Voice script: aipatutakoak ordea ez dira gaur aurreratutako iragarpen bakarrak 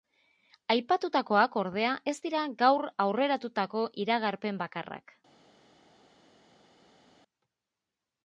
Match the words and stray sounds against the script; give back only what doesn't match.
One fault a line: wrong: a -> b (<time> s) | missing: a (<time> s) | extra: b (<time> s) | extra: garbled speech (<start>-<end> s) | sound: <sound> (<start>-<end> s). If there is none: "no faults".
no faults